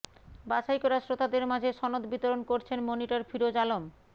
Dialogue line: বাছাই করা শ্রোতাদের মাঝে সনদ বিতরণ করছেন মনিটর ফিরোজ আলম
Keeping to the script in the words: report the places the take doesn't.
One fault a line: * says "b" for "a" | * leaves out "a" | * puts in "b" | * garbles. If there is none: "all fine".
all fine